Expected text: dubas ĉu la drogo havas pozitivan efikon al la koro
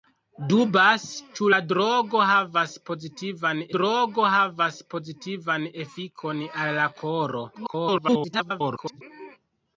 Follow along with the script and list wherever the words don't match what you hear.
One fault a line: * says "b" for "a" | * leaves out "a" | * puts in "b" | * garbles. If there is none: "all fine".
* puts in "drogo havas pozitivan"
* garbles